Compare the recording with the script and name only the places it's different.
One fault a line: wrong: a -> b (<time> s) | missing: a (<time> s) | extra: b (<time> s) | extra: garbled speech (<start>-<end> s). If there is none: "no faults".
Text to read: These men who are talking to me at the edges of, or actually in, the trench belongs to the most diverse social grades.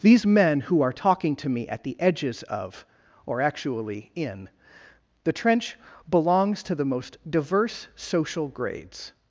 no faults